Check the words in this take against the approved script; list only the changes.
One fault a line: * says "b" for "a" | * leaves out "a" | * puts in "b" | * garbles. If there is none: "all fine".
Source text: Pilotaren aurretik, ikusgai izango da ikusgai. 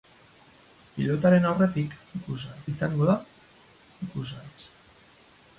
all fine